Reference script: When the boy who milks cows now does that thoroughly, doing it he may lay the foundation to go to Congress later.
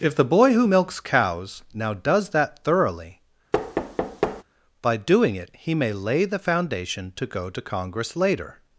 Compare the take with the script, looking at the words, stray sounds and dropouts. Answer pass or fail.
fail